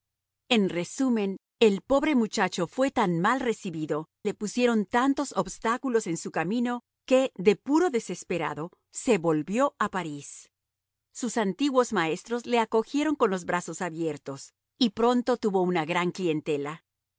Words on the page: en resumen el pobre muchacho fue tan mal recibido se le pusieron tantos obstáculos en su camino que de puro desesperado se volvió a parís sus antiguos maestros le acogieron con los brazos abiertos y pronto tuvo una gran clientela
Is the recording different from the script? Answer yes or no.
yes